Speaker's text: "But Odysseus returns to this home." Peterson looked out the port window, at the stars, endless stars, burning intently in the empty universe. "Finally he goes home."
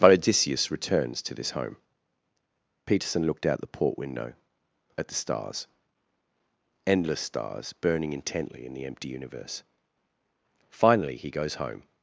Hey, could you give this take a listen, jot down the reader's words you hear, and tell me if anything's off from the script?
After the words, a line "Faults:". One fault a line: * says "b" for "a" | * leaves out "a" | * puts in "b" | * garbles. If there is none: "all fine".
"But Odysseus returns to this home." Peterson looked out the port window, at the stars, endless stars, burning intently in the empty universe. "Finally he goes home."
Faults:
all fine